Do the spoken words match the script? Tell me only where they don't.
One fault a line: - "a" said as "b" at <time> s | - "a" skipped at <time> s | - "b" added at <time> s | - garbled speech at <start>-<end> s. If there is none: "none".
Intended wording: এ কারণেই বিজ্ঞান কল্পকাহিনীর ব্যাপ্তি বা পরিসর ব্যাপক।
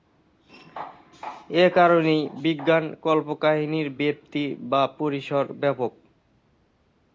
none